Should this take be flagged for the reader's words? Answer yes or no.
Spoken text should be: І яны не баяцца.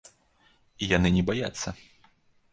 no